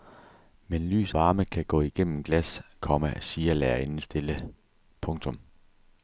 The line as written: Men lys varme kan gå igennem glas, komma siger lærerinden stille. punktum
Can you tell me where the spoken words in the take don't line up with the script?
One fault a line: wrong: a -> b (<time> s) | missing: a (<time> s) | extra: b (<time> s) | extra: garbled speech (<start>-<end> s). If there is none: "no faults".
no faults